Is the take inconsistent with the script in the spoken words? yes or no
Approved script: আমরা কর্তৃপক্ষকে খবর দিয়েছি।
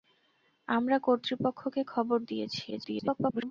yes